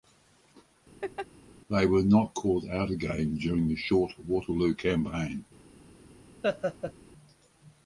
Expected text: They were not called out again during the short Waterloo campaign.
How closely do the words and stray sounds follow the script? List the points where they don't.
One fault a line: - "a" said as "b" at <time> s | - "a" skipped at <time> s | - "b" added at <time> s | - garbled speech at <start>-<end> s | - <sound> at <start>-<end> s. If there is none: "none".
- laugh at 1.0-1.3 s
- laugh at 6.4-6.9 s